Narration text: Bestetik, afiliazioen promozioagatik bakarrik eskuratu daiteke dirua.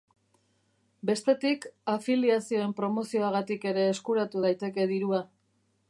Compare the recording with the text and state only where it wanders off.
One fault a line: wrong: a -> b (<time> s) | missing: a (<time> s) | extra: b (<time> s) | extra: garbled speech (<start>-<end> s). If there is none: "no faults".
wrong: bakarrik -> ere (3.7 s)